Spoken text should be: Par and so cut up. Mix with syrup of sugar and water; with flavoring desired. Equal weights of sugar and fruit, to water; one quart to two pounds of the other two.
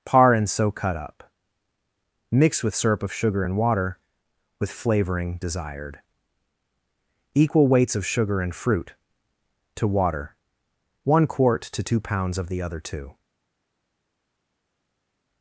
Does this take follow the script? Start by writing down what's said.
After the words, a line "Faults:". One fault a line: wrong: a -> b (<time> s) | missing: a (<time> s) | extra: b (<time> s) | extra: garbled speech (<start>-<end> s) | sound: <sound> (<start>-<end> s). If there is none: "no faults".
Par and so cut up. Mix with syrup of sugar and water; with flavoring desired. Equal weights of sugar and fruit, to water; one quart to two pounds of the other two.
Faults:
no faults